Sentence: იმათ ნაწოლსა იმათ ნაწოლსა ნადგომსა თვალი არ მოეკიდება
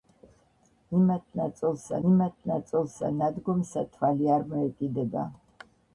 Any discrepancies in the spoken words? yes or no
no